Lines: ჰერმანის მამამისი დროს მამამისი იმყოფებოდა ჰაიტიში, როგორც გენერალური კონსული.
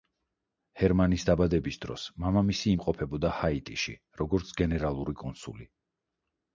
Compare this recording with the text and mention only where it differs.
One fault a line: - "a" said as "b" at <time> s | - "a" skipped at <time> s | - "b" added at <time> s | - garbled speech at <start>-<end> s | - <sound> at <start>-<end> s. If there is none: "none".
- "მამამისი" said as "დაბადების" at 1.3 s